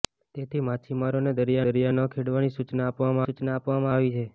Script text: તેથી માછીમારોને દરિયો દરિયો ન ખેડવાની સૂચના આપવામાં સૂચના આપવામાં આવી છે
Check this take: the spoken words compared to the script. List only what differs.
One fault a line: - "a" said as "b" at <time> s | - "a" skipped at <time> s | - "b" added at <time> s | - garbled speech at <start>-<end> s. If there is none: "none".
none